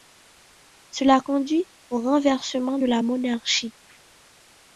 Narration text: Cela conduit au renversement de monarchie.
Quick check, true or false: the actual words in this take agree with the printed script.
false